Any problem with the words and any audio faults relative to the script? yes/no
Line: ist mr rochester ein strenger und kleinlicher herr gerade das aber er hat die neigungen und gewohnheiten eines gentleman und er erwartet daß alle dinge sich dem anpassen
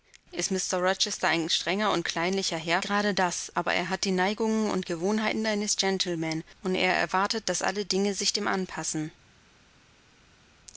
no